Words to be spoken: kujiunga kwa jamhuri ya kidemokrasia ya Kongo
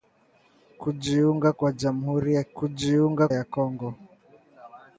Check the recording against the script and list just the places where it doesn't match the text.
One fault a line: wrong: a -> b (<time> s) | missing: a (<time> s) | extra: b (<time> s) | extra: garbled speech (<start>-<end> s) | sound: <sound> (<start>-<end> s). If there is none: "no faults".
wrong: kidemokrasia -> kujiunga (2.5 s)